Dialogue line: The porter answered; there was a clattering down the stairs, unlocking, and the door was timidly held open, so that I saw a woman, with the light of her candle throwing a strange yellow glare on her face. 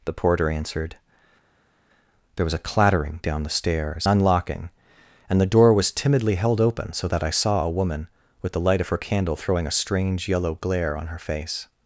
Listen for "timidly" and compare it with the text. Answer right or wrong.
right